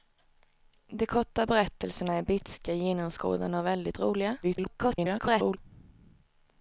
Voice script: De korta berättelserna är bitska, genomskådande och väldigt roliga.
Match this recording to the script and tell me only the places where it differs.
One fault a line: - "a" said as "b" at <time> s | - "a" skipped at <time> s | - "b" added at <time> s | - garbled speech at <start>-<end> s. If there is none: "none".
- garbled speech at 4.4-5.6 s